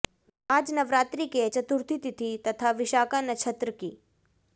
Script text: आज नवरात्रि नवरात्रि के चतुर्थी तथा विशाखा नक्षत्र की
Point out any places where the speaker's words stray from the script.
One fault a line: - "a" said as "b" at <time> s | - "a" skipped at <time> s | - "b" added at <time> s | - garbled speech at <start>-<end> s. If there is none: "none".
- "नवरात्रि" skipped at 1.2 s
- "तिथि" added at 2.0 s